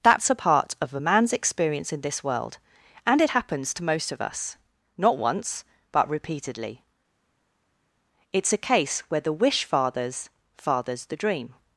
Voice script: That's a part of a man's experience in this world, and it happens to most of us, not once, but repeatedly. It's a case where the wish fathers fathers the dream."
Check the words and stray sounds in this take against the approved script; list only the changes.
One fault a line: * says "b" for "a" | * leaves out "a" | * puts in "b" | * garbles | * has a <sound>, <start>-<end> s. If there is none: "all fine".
all fine